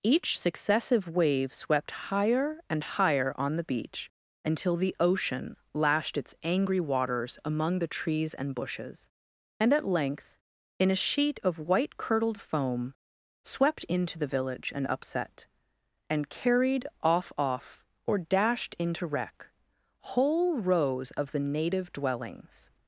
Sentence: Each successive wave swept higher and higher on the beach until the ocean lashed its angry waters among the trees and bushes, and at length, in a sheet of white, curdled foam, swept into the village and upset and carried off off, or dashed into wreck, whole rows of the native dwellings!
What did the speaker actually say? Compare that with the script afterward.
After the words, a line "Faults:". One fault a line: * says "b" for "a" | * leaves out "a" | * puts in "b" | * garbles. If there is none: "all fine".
Each successive wave swept higher and higher on the beach until the ocean lashed its angry waters among the trees and bushes, and at length, in a sheet of white, curdled foam, swept into the village and upset and carried off off, or dashed into wreck, whole rows of the native dwellings!
Faults:
all fine